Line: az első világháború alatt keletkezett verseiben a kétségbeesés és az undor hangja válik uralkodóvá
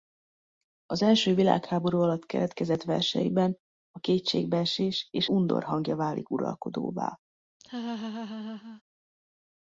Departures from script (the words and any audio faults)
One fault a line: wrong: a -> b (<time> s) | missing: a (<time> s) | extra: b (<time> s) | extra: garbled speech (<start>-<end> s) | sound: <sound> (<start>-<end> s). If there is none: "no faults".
missing: az (5.3 s)
sound: laugh (7.6-8.8 s)